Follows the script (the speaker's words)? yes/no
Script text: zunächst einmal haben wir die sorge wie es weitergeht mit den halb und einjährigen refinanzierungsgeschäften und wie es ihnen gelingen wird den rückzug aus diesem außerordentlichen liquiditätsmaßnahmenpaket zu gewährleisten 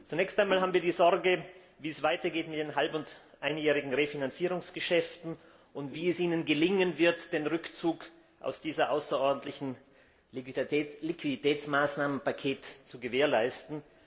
yes